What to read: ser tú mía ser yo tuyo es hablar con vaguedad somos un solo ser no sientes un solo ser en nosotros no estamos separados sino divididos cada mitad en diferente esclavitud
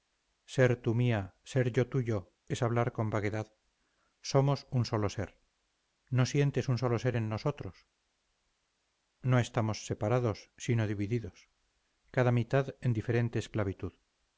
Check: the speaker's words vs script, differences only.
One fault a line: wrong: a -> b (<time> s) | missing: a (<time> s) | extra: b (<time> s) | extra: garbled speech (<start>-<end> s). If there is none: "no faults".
no faults